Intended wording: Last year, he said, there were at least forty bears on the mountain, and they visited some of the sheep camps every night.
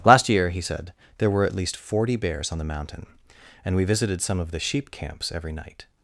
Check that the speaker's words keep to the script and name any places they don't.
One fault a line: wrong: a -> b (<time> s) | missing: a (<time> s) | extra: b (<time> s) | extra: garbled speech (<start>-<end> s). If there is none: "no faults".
wrong: they -> we (3.8 s)